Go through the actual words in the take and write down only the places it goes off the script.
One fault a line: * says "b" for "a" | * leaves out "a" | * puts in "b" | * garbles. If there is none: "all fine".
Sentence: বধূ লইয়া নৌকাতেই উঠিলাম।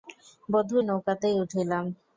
* leaves out "লইয়া"